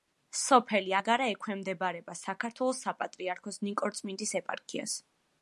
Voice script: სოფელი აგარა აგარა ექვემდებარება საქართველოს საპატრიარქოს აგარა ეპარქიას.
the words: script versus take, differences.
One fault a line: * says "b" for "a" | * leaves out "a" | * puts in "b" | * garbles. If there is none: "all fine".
* leaves out "აგარა"
* says "ნიკორწმინდის" for "აგარა"